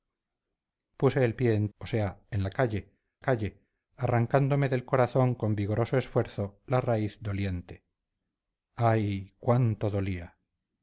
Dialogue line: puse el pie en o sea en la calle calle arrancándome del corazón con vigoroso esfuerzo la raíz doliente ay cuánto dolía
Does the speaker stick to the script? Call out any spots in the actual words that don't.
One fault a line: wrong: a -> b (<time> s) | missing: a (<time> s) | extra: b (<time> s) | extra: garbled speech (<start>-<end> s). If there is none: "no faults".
no faults